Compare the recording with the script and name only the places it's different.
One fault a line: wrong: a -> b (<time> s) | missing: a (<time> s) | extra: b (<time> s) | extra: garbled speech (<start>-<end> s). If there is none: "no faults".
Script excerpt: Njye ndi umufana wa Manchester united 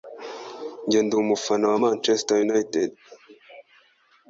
no faults